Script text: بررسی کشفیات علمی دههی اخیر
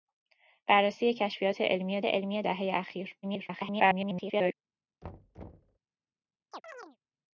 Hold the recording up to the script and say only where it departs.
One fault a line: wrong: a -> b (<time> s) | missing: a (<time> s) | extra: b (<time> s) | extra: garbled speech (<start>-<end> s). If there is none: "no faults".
extra: علمی (2.0 s)
extra: garbled speech (3.2-4.5 s)